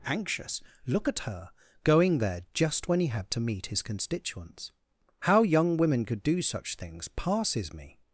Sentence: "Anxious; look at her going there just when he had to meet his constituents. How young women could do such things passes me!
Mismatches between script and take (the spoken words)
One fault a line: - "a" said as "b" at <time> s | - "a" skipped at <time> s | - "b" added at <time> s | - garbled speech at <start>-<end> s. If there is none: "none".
none